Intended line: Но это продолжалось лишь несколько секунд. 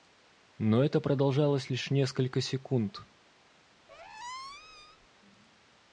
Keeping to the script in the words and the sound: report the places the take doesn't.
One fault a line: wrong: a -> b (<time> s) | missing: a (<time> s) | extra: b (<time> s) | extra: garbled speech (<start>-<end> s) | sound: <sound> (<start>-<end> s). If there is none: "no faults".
sound: squeak (3.9-5.1 s)